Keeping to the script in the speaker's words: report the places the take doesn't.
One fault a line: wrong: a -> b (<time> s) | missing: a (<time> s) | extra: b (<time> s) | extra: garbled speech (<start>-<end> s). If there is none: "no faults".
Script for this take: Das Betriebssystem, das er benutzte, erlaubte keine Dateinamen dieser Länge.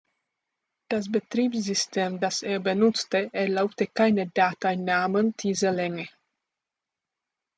no faults